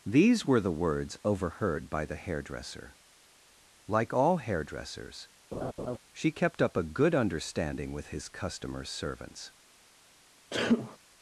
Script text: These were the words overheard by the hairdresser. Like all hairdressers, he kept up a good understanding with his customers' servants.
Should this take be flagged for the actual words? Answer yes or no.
yes